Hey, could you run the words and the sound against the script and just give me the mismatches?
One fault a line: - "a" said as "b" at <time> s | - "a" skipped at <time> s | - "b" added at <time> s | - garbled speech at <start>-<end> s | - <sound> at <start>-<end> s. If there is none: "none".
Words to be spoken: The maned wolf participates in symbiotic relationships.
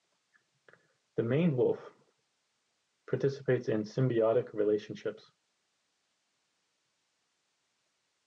none